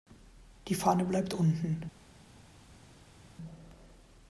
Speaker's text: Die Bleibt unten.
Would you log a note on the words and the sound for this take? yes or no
yes